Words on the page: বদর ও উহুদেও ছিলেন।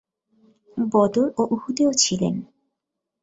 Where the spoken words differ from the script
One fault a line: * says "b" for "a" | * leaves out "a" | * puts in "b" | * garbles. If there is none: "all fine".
all fine